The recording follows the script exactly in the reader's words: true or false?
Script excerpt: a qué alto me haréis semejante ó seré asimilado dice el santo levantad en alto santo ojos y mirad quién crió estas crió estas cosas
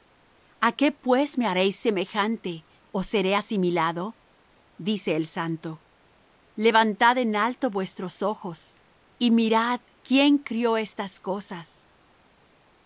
false